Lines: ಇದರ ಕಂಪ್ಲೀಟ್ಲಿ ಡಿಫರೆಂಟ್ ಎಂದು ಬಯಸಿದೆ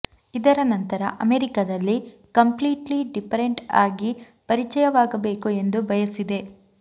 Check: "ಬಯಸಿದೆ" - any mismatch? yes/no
no